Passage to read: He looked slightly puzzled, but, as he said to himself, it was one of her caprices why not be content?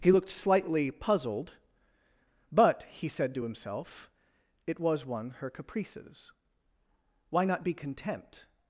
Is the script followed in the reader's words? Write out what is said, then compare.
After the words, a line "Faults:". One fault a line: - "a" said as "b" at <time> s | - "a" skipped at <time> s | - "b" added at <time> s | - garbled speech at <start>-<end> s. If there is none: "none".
He looked slightly puzzled, but, he said to himself, it was one her caprices why not be content?
Faults:
- "as" skipped at 2.8 s
- "of" skipped at 5.3 s